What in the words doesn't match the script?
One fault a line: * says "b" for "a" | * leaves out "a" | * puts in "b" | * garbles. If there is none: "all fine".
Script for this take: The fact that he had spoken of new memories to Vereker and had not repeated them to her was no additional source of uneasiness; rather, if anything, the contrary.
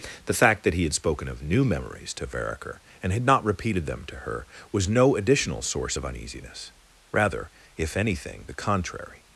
all fine